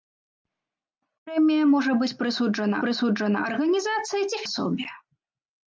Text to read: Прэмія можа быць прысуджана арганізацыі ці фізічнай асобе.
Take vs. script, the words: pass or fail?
fail